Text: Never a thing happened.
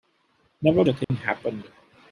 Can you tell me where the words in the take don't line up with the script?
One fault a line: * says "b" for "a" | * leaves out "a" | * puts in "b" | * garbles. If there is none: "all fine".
all fine